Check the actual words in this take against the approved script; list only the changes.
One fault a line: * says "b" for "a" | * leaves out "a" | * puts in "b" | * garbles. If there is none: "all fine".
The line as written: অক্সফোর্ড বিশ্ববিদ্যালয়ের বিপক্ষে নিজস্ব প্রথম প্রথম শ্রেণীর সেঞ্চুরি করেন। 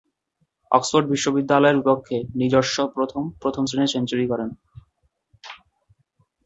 all fine